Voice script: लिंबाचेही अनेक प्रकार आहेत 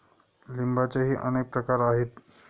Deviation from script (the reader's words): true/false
false